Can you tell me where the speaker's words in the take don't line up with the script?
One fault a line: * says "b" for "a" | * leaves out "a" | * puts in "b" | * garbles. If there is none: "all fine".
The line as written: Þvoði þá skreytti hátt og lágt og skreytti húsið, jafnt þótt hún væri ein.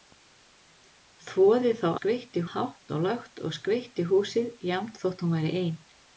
all fine